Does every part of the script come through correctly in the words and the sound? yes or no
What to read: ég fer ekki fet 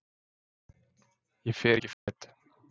no